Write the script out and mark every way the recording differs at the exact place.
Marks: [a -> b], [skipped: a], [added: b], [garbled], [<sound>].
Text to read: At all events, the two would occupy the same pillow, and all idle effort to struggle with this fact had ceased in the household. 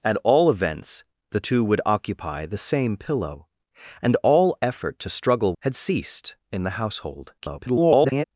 At all events, the two would occupy the same pillow, and all [skipped: idle] effort to struggle [skipped: with this fact] had ceased in the household. [garbled]